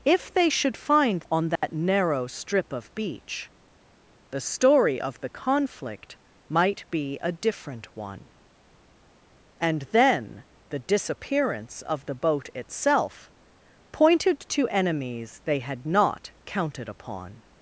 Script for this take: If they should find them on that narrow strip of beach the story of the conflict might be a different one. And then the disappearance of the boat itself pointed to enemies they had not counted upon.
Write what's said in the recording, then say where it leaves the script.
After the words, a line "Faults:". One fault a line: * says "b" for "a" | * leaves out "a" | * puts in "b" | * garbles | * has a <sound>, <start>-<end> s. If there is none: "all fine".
If they should find on that narrow strip of beach the story of the conflict might be a different one. And then the disappearance of the boat itself pointed to enemies they had not counted upon.
Faults:
* leaves out "them"
* has a dropout, 1.6-1.6 s